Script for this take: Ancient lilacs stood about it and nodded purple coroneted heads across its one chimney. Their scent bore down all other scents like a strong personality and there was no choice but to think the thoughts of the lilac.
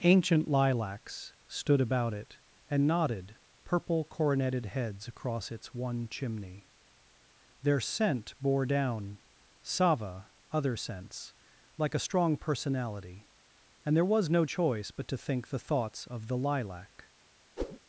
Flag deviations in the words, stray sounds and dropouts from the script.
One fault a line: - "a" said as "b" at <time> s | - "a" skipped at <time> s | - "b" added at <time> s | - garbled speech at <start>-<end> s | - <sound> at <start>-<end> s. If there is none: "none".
- "all" said as "sava" at 9.6 s
- whoosh at 17.6-17.8 s